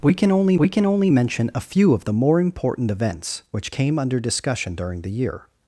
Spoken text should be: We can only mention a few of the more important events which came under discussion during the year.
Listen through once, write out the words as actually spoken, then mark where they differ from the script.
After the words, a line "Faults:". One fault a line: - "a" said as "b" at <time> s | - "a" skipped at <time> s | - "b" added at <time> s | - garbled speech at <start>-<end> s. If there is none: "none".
We can only we can only mention a few of the more important events which came under discussion during the year.
Faults:
- "we can only" added at 0.6 s